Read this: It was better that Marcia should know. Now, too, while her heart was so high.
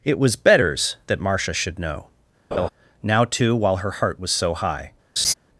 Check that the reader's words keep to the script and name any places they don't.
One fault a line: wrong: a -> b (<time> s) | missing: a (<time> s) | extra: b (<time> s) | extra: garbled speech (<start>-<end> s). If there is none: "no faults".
wrong: better -> betters (0.3 s)